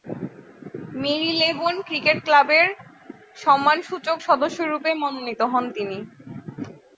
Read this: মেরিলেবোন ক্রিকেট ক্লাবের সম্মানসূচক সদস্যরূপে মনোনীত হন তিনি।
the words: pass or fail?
pass